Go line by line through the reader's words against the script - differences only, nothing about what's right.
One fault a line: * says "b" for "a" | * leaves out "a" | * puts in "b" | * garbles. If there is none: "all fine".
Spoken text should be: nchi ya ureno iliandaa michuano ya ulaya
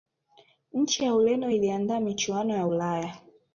all fine